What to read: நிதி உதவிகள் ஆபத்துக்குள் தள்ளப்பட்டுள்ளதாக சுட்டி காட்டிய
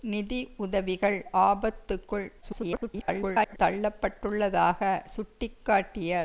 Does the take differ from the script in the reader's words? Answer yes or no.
yes